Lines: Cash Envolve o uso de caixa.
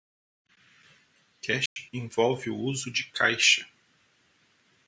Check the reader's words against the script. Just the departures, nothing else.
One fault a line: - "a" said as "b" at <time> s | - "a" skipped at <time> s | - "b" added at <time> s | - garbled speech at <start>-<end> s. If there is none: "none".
none